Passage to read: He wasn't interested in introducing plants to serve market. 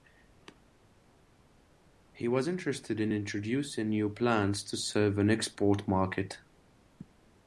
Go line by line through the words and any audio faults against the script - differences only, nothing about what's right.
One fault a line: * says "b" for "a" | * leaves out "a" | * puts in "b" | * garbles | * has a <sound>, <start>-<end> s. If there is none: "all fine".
* says "was" for "wasn't"
* puts in "new"
* puts in "an export"